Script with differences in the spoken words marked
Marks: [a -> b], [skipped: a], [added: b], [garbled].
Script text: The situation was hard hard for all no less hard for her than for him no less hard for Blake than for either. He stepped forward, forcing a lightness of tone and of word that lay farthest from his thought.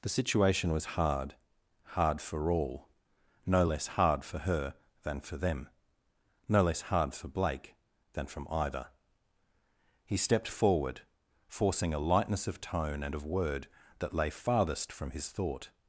The situation was hard hard for all no less hard for her than for [him -> them] no less hard for Blake than [for -> from] either. He stepped forward, forcing a lightness of tone and of word that lay farthest from his thought.